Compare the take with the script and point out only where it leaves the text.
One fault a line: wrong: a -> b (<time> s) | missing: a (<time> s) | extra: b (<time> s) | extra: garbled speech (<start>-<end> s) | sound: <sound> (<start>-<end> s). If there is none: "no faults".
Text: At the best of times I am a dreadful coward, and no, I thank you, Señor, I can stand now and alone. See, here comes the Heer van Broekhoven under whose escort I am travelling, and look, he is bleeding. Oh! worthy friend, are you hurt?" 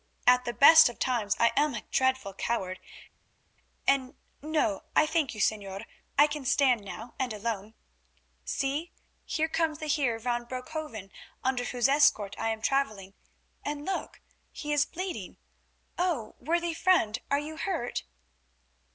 no faults